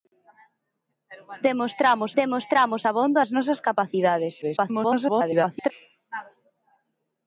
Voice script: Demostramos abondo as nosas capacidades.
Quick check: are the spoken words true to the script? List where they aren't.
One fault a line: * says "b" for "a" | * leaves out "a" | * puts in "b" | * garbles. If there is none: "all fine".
* puts in "demostramos"
* garbles